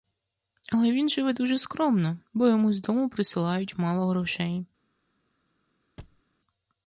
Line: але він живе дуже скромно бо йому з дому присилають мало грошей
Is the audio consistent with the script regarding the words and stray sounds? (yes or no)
no